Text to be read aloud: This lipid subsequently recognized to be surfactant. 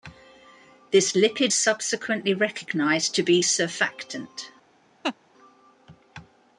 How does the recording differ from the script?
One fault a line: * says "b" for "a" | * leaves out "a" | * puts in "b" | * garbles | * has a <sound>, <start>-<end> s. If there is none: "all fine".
* has a laugh, 5.0-5.2 s